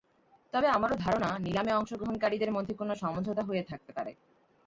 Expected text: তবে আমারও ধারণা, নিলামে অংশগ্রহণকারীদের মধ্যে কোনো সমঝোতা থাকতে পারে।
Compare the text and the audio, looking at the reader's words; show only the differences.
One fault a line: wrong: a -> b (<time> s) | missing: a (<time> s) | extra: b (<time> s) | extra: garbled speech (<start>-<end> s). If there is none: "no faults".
extra: হয়ে (3.4 s)